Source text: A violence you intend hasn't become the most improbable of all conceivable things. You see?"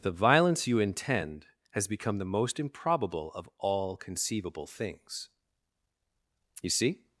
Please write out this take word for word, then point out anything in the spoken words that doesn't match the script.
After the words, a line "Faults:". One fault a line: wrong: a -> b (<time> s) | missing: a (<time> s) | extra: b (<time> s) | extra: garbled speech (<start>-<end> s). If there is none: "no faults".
The violence you intend has become the most improbable of all conceivable things. You see?"
Faults:
wrong: A -> The (0.0 s)
wrong: hasn't -> has (1.7 s)